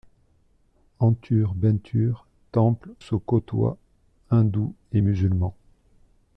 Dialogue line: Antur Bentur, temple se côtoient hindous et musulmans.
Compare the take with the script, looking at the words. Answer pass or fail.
pass